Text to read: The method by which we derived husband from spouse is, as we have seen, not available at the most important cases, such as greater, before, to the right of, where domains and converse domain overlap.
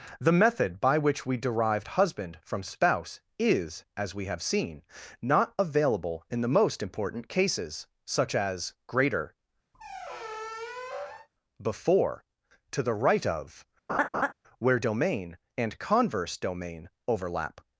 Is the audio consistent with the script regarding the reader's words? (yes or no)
no